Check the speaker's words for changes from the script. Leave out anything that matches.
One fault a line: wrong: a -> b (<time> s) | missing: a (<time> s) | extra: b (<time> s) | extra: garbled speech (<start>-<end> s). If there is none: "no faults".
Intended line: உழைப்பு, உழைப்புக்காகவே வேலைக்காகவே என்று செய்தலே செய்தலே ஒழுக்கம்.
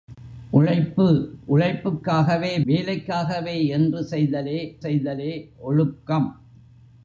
no faults